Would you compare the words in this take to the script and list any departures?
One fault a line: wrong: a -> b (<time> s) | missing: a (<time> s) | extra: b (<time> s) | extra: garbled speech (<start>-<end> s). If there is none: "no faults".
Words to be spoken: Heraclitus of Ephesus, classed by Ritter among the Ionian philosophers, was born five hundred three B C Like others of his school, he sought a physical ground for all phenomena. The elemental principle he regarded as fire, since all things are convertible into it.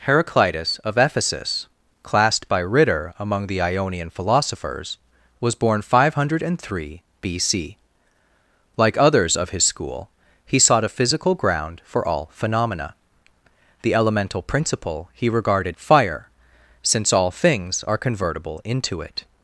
missing: as (15.8 s)